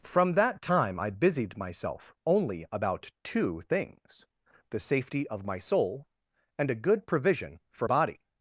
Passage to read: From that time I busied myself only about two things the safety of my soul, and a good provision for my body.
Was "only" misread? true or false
false